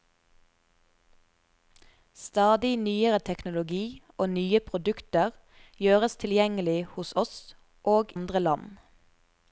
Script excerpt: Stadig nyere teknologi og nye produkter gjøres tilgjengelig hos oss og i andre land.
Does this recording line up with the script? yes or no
no